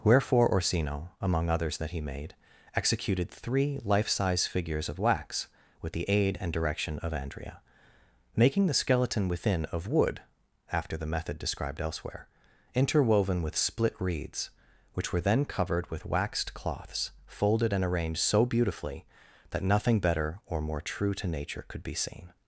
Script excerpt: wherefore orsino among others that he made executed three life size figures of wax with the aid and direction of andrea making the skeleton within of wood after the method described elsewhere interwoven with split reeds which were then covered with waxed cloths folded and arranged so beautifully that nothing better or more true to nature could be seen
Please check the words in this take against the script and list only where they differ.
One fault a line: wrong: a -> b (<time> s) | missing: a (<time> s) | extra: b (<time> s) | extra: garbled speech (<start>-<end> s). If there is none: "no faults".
no faults